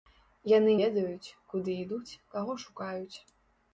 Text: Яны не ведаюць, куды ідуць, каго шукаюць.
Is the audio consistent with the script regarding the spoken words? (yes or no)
no